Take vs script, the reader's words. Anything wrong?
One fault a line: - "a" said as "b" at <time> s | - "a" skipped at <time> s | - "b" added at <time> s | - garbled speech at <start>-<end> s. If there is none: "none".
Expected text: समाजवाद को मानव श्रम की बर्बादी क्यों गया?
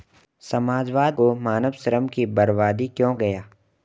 none